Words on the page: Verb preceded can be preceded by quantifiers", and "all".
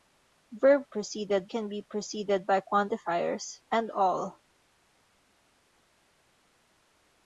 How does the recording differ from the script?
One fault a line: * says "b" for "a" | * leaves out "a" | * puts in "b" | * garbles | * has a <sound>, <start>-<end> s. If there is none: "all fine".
all fine